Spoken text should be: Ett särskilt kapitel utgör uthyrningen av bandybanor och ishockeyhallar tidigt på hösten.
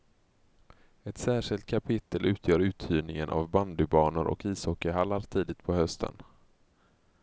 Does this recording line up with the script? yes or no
yes